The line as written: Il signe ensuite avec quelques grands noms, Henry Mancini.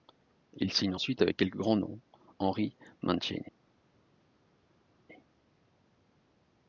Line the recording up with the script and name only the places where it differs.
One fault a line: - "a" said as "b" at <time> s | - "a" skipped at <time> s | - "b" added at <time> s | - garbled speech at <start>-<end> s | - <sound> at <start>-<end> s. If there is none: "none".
none